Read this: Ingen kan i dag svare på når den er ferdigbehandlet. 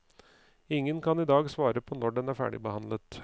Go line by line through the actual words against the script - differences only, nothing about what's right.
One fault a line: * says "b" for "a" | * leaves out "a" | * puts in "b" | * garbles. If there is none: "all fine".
all fine